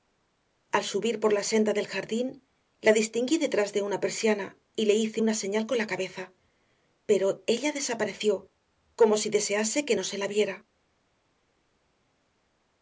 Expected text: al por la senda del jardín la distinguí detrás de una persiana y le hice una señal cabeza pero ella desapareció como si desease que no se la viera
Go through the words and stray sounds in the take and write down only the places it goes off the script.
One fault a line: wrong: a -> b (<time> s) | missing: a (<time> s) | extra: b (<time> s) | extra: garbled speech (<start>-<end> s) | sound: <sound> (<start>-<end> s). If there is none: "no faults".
extra: subir (0.8 s)
extra: con la (5.7 s)